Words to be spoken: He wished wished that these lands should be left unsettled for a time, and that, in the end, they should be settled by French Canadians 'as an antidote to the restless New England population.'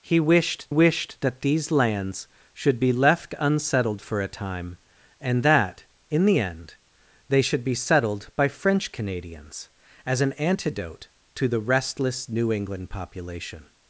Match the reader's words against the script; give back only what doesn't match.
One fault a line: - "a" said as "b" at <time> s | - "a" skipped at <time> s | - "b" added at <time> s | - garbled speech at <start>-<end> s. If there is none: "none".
none